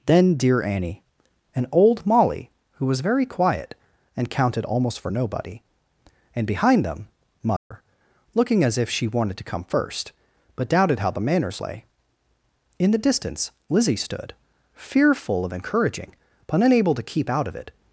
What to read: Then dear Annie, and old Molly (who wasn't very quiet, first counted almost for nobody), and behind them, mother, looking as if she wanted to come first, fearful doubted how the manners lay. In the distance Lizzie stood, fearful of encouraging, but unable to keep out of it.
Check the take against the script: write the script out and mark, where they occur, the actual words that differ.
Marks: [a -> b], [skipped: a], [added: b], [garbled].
Then dear Annie, and old Molly (who [wasn't -> was] very quiet, [first -> and] counted almost for nobody), and behind them, mother, looking as if she wanted to come first, [fearful -> but] doubted how the manners lay. In the distance Lizzie stood, fearful of encouraging, but unable to keep out of it.